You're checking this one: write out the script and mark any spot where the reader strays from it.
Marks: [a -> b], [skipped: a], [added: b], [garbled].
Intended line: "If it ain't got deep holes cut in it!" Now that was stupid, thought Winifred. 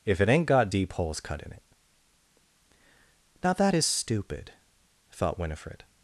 "If it ain't got deep holes cut in it!" Now that [was -> is] stupid, thought Winifred.